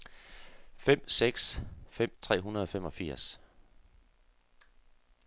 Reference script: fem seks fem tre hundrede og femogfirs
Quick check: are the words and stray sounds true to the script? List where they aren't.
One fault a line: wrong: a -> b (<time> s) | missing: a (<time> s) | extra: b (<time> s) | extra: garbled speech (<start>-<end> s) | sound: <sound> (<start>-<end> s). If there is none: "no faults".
no faults